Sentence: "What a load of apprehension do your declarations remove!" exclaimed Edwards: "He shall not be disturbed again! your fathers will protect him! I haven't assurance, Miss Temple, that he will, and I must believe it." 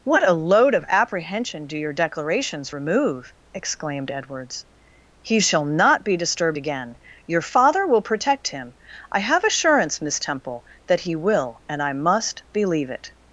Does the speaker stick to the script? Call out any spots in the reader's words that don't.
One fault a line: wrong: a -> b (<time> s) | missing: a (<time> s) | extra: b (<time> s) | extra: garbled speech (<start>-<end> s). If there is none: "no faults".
wrong: fathers -> father (7.4 s)
wrong: haven't -> have (9.2 s)